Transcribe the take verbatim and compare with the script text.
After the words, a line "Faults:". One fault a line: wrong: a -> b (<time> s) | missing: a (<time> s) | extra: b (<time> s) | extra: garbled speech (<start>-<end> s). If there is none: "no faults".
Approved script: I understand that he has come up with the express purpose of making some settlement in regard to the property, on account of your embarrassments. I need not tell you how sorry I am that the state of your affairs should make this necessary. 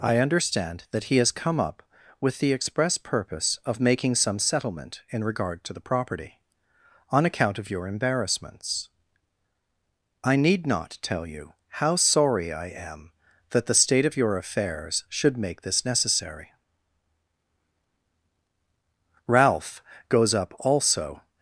I understand that he has come up with the express purpose of making some settlement in regard to the property, on account of your embarrassments. I need not tell you how sorry I am that the state of your affairs should make this necessary. Ralph goes up also
Faults:
extra: Ralph goes up also (19.3 s)